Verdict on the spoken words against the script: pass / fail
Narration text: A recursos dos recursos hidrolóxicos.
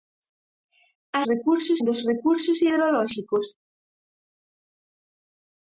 pass